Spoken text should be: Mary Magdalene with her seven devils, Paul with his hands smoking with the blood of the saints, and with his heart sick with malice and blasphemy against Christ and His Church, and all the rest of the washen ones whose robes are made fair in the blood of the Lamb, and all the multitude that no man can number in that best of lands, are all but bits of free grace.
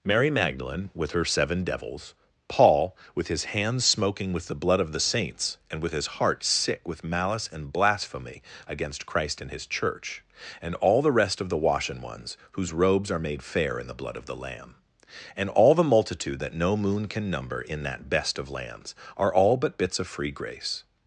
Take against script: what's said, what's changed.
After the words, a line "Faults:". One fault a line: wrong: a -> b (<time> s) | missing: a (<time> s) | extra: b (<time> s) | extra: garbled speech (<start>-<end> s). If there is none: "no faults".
Mary Magdalene with her seven devils, Paul with his hands smoking with the blood of the saints, and with his heart sick with malice and blasphemy against Christ and His Church, and all the rest of the washen ones whose robes are made fair in the blood of the Lamb, and all the multitude that no moon can number in that best of lands, are all but bits of free grace.
Faults:
wrong: man -> moon (16.8 s)